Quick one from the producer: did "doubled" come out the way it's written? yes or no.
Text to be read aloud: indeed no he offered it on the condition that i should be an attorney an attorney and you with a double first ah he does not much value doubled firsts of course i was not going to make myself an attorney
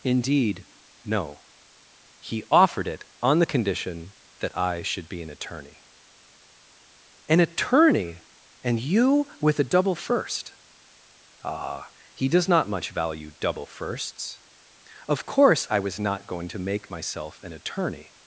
no